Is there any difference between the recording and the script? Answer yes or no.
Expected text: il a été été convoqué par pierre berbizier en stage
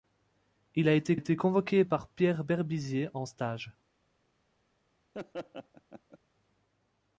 no